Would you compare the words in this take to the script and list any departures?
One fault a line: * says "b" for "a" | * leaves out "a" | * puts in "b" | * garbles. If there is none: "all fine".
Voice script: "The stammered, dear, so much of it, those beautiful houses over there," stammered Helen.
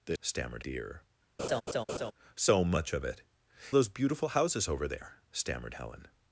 all fine